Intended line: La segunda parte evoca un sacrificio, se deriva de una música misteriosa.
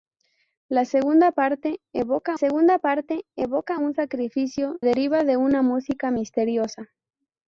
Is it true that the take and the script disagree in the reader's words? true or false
true